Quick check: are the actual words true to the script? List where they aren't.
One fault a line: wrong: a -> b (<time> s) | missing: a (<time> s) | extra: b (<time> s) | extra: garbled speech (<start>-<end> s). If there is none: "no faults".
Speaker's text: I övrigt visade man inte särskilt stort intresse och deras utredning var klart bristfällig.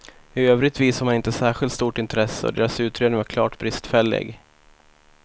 no faults